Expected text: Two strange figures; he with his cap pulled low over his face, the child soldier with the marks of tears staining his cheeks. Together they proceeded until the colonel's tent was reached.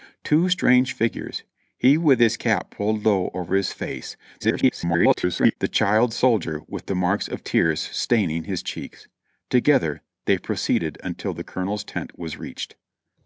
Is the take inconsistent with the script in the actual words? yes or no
yes